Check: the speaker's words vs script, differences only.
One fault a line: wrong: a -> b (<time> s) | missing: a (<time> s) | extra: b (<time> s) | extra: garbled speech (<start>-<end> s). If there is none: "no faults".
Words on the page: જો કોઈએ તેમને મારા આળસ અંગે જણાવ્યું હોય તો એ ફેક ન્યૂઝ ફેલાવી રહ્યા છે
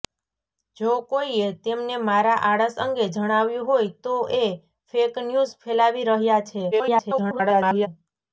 extra: garbled speech (6.7-7.9 s)